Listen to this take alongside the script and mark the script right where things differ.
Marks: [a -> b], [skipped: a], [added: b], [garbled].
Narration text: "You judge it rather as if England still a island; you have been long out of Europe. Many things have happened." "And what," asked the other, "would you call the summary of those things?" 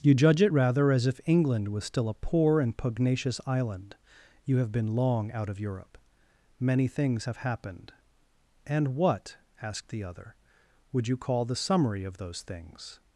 "You judge it rather as if England [added: was] still a [added: poor and pugnacious] island; you have been long out of Europe. Many things have happened." "And what," asked the other, "would you call the summary of those things?"